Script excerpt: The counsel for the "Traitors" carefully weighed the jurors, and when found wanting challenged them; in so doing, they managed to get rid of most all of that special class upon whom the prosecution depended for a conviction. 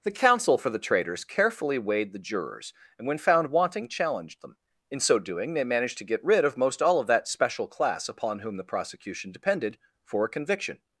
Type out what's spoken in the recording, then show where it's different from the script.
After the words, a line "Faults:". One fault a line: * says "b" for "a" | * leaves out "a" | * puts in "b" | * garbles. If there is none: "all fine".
The counsel for the "Traitors" carefully weighed the jurors, and when found wanting challenged them; in so doing, they managed to get rid of most all of that special class upon whom the prosecution depended for a conviction.
Faults:
all fine